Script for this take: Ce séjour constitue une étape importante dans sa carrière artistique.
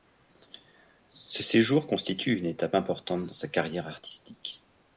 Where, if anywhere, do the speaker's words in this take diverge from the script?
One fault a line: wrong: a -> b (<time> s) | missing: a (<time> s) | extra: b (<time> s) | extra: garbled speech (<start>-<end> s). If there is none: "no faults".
no faults